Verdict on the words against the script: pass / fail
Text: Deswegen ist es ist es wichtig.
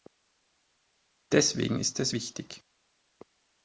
fail